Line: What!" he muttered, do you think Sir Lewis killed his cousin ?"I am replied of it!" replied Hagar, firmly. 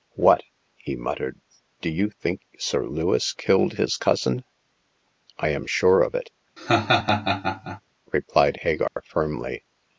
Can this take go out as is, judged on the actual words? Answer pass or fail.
fail